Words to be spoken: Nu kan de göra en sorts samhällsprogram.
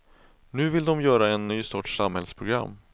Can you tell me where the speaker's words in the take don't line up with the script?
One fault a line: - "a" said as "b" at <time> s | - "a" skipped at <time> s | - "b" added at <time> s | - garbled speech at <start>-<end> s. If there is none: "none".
- "kan" said as "vill" at 0.7 s
- "ny" added at 1.5 s